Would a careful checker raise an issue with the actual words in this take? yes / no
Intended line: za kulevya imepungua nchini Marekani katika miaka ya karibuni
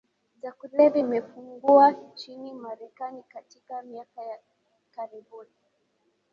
no